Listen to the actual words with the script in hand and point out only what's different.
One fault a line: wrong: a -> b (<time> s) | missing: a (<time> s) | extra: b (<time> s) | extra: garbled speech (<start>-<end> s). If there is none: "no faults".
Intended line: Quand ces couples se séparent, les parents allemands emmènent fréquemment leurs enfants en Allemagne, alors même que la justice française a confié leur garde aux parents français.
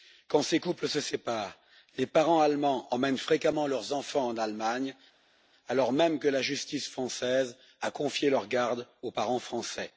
no faults